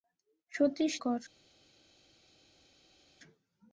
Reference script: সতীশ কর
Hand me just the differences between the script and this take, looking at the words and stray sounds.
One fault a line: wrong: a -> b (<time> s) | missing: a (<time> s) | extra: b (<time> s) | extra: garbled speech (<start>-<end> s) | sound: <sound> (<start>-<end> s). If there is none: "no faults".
no faults